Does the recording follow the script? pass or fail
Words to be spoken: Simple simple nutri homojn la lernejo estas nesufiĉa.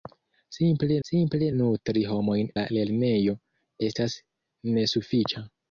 pass